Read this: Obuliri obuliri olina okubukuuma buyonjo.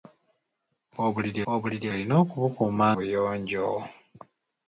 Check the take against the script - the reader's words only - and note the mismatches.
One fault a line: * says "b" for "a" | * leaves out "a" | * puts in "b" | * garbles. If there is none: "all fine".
all fine